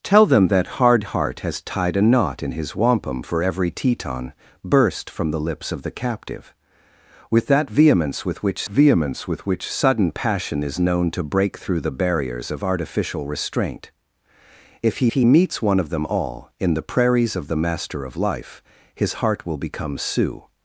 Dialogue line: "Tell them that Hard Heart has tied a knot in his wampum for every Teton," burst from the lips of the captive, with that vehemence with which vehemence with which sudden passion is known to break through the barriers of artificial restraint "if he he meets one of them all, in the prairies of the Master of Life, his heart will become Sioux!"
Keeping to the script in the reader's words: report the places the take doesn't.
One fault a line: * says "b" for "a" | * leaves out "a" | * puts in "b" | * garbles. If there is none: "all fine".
all fine